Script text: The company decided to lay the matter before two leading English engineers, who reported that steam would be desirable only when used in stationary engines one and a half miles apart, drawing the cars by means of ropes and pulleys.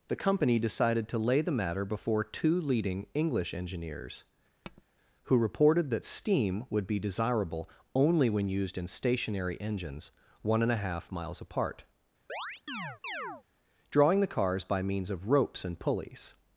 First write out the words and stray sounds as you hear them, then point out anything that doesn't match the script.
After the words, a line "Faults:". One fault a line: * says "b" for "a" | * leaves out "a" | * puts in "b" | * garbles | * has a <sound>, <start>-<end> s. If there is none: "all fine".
The company decided to lay the matter before two leading English engineers, who reported that steam would be desirable only when used in stationary engines one and a half miles apart, drawing the cars by means of ropes and pulleys.
Faults:
* has a tap, 4.6-4.8 s
* has a chirp, 12.3-13.4 s